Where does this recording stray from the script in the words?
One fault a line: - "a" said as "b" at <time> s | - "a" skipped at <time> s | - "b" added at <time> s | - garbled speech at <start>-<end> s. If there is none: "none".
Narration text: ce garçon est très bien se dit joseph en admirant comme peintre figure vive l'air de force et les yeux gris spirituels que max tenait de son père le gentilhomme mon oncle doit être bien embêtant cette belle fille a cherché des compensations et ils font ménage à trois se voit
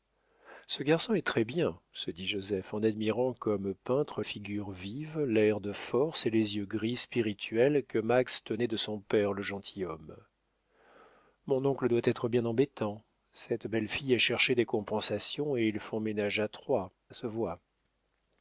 none